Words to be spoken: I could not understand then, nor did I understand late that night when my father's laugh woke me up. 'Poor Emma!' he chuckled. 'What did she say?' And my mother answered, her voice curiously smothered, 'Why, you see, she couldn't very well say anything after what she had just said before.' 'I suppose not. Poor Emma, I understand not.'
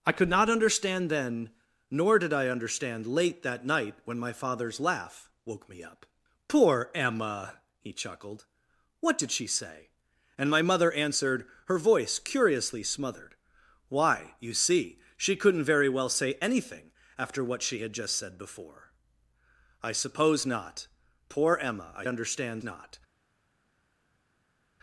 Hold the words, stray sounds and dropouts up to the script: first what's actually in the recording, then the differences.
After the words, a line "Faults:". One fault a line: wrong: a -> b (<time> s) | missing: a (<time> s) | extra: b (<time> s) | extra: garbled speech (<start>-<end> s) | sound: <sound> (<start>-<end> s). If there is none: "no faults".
I could not understand then, nor did I understand late that night when my father's laugh woke me up. 'Poor Emma!' he chuckled. 'What did she say?' And my mother answered, her voice curiously smothered, 'Why, you see, she couldn't very well say anything after what she had just said before.' 'I suppose not. Poor Emma, I understand not.'
Faults:
no faults